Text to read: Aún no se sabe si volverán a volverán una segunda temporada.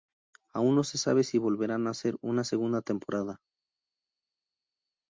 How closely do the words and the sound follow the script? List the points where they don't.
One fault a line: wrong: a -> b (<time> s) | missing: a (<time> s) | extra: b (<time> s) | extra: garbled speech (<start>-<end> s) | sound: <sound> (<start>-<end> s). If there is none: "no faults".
wrong: volverán -> hacer (1.9 s)